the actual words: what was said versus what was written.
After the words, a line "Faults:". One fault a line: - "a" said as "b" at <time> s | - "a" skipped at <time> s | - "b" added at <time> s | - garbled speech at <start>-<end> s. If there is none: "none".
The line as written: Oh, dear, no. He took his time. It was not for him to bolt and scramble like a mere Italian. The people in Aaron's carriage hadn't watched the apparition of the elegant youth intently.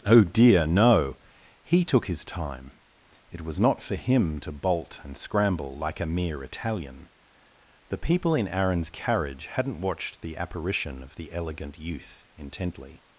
Oh, dear, no. He took his time. It was not for him to bolt and scramble like a mere Italian. The people in Aaron's carriage hadn't watched the apparition of the elegant youth intently.
Faults:
none